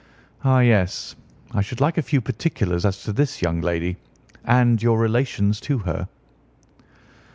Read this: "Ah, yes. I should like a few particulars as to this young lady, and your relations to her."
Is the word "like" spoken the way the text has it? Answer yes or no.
yes